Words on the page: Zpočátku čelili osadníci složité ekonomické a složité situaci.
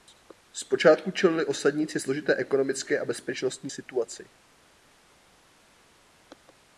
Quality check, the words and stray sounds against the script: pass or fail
fail